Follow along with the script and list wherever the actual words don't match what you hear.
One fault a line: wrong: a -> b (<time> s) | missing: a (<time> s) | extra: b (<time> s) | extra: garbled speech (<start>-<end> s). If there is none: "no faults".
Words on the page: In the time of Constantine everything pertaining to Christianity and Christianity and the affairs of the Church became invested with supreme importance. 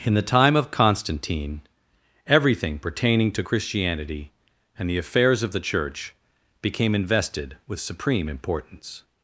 missing: Christianity and (4.9 s)